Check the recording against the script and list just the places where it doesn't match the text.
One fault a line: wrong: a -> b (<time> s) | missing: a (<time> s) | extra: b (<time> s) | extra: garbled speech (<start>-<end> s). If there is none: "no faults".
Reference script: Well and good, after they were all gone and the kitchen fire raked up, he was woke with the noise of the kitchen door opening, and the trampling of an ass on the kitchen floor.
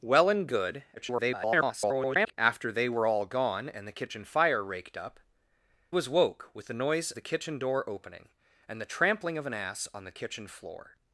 extra: garbled speech (1.0-2.3 s)
missing: he (5.2 s)
missing: of (7.1 s)